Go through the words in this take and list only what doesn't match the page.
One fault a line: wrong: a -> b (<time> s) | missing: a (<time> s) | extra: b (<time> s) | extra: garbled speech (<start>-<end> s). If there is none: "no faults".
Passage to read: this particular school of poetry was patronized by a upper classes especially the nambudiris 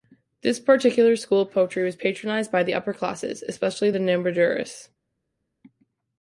wrong: a -> the (2.6 s)